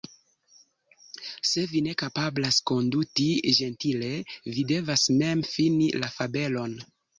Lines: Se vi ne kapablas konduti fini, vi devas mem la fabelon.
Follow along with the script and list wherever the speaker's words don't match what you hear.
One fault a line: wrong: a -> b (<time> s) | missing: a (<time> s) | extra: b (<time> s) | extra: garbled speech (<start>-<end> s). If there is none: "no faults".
wrong: fini -> ĝentile (3.6 s)
extra: fini (5.5 s)